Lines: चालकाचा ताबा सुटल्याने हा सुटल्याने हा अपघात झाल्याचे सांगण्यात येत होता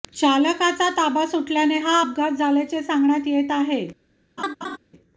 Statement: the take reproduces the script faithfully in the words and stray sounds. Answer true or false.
false